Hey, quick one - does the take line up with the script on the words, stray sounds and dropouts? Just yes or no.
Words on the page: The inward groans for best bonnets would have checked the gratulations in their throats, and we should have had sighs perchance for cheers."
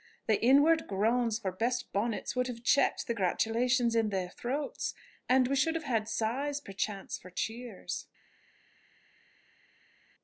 yes